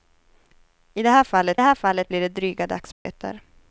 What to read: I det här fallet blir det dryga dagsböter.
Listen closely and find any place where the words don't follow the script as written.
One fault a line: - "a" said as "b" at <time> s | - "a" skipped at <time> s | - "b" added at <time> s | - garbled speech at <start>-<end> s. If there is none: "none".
- "här fallet" added at 1.6 s